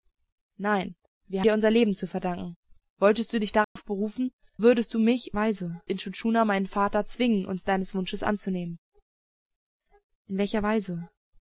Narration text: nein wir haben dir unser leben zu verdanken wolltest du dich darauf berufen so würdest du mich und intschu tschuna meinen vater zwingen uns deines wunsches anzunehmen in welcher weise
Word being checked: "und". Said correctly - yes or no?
no